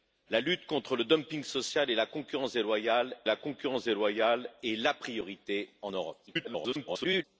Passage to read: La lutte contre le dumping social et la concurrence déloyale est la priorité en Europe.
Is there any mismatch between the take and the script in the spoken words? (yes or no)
yes